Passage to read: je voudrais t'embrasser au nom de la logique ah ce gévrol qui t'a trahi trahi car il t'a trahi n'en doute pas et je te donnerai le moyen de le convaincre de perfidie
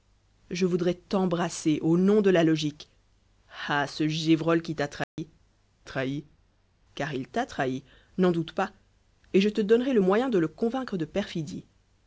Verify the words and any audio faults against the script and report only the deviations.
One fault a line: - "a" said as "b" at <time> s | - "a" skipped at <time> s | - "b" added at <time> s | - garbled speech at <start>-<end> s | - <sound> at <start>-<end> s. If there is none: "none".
- dropout at 5.0-5.2 s